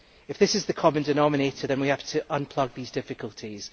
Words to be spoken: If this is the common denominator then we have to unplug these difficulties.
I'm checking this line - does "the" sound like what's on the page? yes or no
yes